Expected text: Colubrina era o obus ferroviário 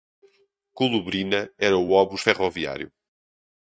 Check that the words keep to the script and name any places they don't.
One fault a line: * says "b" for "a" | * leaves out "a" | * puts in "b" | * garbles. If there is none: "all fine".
all fine